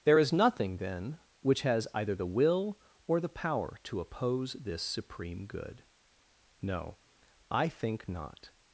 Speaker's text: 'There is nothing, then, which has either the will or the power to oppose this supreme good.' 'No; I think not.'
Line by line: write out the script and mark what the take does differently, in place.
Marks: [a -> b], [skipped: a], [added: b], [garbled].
'There is nothing, then, which has either the will or the power to oppose this supreme good.' 'No; I think not.'